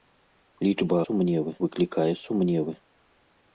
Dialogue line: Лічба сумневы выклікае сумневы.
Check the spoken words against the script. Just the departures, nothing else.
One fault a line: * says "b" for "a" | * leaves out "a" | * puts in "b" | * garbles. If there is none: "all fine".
all fine